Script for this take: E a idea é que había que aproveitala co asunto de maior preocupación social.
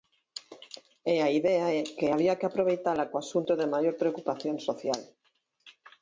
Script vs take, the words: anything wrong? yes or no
no